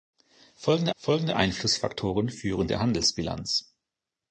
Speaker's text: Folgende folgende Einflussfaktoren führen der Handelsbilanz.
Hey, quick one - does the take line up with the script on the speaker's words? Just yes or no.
yes